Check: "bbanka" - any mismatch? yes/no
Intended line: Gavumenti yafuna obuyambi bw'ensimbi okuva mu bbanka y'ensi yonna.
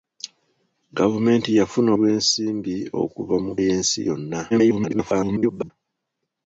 yes